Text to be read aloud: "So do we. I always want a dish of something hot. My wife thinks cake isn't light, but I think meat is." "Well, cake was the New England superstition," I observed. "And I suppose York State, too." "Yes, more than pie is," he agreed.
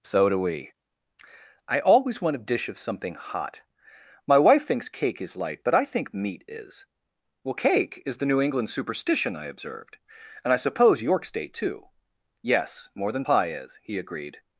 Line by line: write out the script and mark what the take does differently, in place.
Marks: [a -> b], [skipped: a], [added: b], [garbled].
"So do we. I always want a dish of something hot. My wife thinks cake [isn't -> is] light, but I think meat is." "Well, cake [was -> is] the New England superstition," I observed. "And I suppose York State, too." "Yes, more than pie is," he agreed.